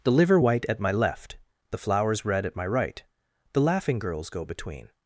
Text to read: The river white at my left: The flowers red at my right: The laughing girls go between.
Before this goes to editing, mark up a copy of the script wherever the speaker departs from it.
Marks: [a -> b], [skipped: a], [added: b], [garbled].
The [river -> liver] white at my left: The flowers red at my right: The laughing girls go between.